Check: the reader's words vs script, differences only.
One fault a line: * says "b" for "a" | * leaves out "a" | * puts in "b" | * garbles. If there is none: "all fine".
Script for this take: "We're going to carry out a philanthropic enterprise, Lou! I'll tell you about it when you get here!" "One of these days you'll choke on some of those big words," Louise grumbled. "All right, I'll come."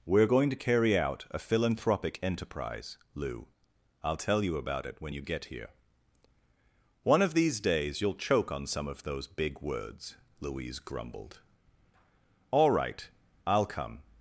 all fine